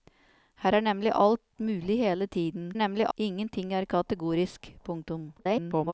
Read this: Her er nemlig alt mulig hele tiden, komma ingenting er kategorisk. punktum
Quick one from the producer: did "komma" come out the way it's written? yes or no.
no